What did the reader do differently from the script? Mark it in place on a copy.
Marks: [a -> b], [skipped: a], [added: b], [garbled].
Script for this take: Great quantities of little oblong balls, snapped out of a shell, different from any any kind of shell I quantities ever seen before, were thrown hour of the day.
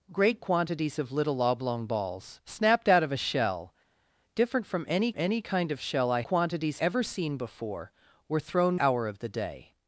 Great quantities of little oblong balls, snapped out of a shell, different from any any kind of shell I quantities ever seen before, were thrown hour of the day.